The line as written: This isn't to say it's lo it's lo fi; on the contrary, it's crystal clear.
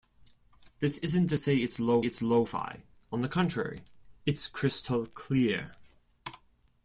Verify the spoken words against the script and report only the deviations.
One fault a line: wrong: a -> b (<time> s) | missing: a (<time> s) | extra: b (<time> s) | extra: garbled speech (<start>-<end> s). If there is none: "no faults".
no faults